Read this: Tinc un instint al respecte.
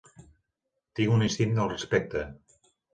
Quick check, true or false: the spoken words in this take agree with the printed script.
true